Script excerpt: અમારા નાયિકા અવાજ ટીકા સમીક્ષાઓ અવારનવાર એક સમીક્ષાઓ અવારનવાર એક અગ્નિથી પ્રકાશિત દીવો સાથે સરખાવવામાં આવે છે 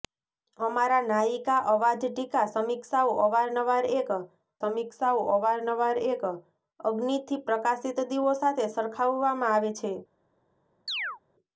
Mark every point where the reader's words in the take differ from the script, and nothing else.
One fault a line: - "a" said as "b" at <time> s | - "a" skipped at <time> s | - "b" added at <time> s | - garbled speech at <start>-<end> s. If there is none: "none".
none